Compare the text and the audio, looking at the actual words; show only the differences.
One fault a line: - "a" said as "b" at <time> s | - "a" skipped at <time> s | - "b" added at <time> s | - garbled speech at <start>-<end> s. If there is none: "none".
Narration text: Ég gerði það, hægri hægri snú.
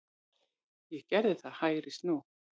- "hægri" skipped at 2.0 s